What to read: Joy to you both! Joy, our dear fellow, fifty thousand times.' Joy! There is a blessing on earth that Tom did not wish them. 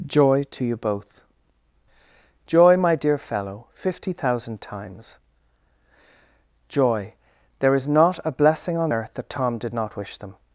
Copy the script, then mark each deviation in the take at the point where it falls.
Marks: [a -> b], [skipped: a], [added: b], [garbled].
Joy to you both! Joy, [our -> my] dear fellow, fifty thousand times.' Joy! There is [added: not] a blessing on earth that Tom did not wish them.